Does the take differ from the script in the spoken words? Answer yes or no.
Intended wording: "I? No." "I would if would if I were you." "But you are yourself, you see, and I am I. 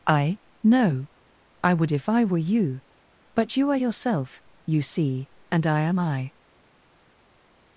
yes